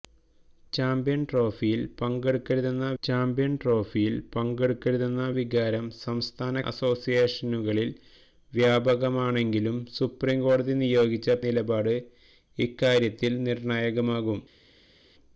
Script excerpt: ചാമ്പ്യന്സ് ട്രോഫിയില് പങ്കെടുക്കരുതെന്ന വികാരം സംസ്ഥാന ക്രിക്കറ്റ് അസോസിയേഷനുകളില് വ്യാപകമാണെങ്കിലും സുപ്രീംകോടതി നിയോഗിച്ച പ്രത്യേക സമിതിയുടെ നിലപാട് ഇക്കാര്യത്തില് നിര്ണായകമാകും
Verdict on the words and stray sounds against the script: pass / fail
fail